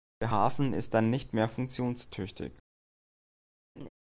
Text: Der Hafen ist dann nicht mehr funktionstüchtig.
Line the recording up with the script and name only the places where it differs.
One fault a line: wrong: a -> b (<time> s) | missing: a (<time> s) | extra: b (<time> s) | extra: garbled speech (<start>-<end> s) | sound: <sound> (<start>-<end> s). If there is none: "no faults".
sound: laugh (3.8-3.9 s)